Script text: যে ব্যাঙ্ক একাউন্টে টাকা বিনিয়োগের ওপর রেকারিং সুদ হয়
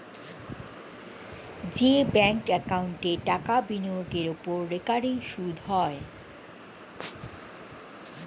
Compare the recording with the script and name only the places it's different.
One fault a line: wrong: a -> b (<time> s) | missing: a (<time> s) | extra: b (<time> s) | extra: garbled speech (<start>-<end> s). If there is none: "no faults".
no faults